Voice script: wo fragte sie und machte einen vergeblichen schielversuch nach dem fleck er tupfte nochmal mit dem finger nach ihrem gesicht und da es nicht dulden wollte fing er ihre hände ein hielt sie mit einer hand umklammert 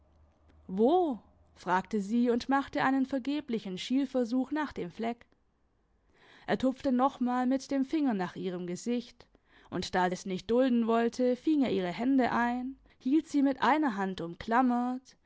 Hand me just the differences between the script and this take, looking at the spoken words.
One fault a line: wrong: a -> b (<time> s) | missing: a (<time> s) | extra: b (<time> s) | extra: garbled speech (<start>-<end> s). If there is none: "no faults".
no faults